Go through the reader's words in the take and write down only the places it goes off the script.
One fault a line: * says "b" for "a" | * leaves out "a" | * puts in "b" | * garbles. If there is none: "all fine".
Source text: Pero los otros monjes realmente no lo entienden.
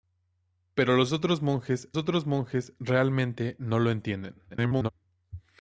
* puts in "otros monjes"
* garbles